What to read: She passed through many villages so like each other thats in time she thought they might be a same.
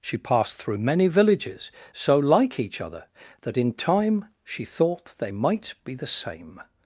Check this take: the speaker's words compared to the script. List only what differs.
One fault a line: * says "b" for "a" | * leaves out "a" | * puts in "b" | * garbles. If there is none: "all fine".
* says "that" for "thats"
* says "the" for "a"